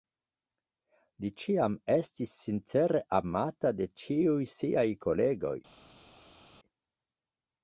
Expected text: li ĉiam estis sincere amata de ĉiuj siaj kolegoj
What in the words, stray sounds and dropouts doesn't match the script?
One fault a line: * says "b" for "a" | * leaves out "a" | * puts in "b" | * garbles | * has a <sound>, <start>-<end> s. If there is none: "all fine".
all fine